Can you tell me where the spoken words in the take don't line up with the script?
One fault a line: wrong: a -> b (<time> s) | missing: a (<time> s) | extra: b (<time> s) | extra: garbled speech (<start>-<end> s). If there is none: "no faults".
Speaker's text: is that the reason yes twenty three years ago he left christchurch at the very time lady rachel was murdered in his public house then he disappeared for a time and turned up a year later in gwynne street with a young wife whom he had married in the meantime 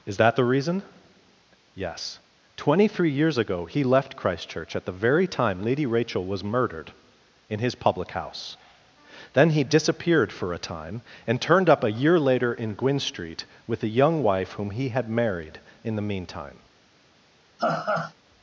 no faults